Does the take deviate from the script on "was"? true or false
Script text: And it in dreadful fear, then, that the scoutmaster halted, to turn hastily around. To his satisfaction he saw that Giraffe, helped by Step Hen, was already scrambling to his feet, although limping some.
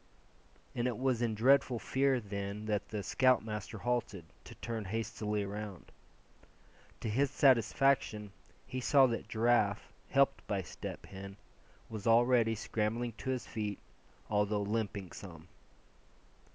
false